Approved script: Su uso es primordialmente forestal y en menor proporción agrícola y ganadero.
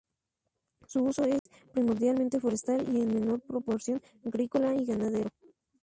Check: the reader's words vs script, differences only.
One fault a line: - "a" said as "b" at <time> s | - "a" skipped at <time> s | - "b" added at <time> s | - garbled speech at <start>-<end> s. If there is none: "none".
none